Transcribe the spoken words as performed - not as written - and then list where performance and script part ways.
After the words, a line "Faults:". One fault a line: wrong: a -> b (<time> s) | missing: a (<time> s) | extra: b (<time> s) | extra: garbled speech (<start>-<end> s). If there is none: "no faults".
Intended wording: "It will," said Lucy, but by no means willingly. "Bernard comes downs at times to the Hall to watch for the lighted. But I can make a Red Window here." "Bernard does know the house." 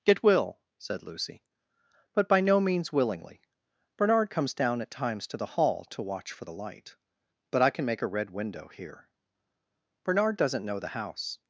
"It will," said Lucy, but by no means willingly. "Bernard comes down at times to the Hall to watch for the light. But I can make a Red Window here." "Bernard doesn't know the house."
Faults:
wrong: downs -> down (4.5 s)
wrong: lighted -> light (6.5 s)
wrong: does -> doesn't (10.4 s)